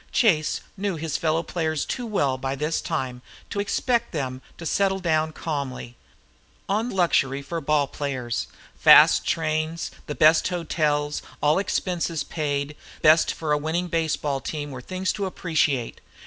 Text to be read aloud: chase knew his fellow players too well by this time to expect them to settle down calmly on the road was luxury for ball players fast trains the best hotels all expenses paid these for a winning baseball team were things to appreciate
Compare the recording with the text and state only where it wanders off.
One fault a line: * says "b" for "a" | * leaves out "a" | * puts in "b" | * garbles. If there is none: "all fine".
* leaves out "the road was"
* says "best" for "these"